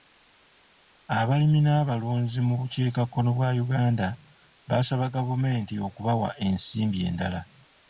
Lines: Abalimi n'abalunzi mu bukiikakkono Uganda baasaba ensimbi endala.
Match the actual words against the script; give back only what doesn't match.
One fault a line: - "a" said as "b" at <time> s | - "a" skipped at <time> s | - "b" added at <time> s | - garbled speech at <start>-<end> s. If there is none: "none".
- "bwa" added at 3.4 s
- "gavumenti okubawa" added at 5.2 s